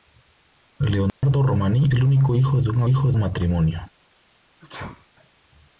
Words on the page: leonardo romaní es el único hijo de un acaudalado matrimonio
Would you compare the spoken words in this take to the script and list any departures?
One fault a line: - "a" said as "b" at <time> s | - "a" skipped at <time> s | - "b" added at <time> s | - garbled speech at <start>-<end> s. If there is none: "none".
- "es" skipped at 1.9 s
- "acaudalado" said as "hijo" at 2.9 s